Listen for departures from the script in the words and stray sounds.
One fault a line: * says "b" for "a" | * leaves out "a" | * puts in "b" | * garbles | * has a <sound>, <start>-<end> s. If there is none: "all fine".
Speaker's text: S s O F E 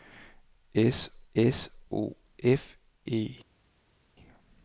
all fine